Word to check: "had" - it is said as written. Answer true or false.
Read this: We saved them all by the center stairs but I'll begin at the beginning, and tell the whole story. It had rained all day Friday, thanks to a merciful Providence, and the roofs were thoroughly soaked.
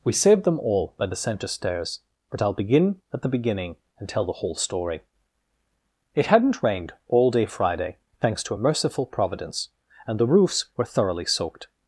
false